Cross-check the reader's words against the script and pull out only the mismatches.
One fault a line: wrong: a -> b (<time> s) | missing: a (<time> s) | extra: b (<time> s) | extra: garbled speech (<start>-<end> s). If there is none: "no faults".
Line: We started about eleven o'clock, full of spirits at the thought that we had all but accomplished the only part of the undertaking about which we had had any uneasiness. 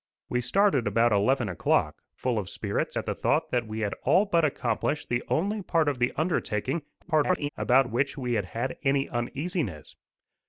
extra: garbled speech (7.0-7.5 s)